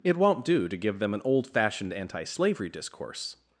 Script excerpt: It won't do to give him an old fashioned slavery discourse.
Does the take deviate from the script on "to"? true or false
false